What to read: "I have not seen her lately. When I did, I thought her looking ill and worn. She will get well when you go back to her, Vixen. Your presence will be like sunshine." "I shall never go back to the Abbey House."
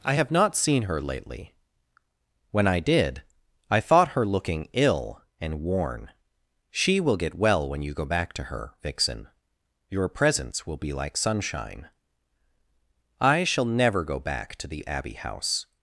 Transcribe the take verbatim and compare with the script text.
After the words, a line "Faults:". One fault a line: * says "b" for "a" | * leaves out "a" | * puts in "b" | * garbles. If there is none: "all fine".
"I have not seen her lately. When I did, I thought her looking ill and worn. She will get well when you go back to her, Vixen. Your presence will be like sunshine." "I shall never go back to the Abbey House."
Faults:
all fine